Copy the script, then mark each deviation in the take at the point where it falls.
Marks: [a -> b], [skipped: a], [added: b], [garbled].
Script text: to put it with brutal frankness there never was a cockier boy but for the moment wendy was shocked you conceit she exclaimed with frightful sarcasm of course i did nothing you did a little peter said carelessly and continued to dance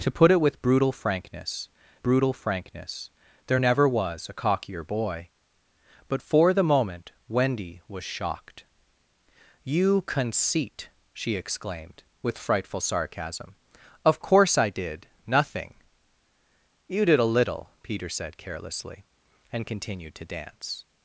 to put it with brutal frankness [added: brutal frankness] there never was a cockier boy but for the moment wendy was shocked you conceit she exclaimed with frightful sarcasm of course i did nothing you did a little peter said carelessly and continued to dance